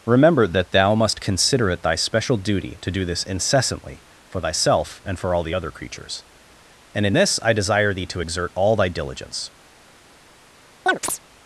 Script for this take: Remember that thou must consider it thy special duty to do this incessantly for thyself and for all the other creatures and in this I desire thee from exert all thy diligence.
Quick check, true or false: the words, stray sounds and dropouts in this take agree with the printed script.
false